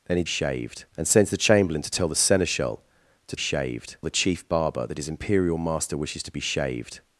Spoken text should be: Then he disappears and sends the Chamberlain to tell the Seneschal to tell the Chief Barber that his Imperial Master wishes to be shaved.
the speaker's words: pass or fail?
fail